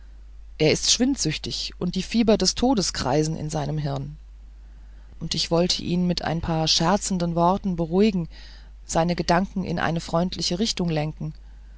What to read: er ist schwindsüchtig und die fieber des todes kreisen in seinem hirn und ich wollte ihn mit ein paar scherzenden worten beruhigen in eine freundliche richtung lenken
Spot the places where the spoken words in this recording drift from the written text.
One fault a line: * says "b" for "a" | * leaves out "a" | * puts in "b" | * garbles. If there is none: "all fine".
* puts in "seine gedanken"